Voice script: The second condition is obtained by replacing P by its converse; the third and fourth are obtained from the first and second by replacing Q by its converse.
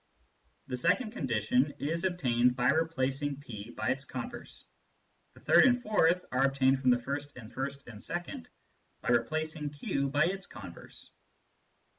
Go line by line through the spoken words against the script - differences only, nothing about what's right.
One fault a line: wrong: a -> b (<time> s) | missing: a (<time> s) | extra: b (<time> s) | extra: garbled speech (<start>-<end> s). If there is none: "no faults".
extra: first and (7.5 s)